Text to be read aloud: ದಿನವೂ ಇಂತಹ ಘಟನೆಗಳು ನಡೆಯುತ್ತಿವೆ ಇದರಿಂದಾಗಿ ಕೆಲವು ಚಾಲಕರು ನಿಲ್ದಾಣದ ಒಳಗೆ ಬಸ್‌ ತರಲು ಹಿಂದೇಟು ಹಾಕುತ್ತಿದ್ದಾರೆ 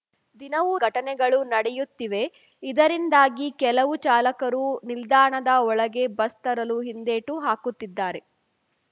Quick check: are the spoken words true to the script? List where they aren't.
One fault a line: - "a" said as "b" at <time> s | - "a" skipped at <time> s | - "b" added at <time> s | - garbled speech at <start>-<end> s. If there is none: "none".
- "ಇಂತಹ" skipped at 0.7 s